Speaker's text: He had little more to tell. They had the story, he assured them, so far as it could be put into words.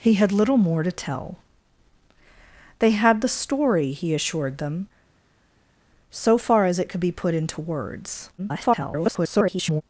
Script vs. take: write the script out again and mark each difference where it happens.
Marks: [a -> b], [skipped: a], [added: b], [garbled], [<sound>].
He had little more to tell. They had the story, he assured them, so far as it could be put into words. [garbled]